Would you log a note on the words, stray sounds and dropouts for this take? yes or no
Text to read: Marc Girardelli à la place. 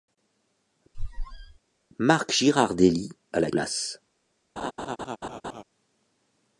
yes